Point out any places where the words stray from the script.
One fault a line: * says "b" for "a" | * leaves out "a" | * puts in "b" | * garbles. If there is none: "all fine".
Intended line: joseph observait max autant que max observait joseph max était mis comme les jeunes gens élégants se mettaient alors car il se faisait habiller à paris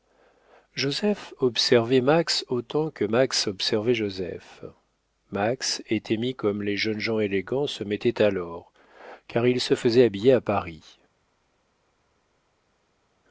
all fine